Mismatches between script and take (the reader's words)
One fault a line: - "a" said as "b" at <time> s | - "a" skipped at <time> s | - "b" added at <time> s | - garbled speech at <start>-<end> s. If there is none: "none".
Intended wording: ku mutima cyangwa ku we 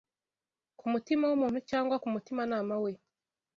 - "w'umuntu" added at 1.3 s
- "mutimanama" added at 2.1 s